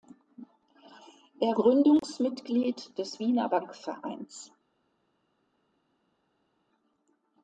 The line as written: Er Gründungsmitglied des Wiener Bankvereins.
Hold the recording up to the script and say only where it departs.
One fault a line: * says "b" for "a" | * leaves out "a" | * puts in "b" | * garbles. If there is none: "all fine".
all fine